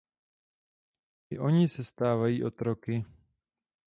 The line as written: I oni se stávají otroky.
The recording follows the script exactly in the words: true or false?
true